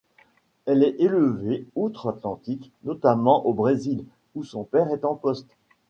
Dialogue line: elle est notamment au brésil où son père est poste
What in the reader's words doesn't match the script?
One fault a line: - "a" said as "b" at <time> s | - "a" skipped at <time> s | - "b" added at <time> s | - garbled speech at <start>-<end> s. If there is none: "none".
- "élevée outre atlantique" added at 1.0 s
- "en" added at 5.0 s